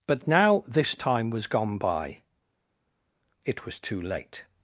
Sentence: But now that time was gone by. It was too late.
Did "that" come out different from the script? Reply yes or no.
yes